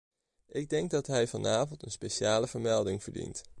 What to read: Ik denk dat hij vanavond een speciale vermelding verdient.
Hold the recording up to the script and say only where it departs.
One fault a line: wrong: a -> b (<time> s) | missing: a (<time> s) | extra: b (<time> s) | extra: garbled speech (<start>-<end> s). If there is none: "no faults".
no faults